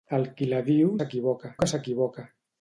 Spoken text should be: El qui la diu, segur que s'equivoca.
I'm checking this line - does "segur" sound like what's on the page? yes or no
no